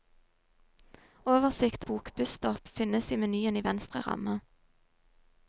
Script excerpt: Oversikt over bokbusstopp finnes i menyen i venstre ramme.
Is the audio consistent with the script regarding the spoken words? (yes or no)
no